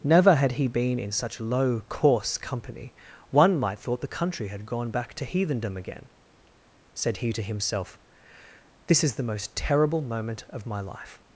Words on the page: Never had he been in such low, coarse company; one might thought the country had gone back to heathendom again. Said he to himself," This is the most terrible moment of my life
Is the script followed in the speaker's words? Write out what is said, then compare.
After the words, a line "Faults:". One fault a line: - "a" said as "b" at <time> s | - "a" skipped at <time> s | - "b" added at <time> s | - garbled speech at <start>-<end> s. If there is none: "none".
Never had he been in such low, coarse company; one might thought the country had gone back to heathendom again. Said he to himself," This is the most terrible moment of my life
Faults:
none